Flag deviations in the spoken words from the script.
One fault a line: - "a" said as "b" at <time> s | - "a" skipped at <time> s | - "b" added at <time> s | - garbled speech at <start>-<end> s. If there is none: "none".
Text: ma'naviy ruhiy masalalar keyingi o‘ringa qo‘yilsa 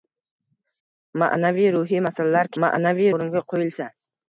- "keyingi" said as "ma'naviy" at 2.6 s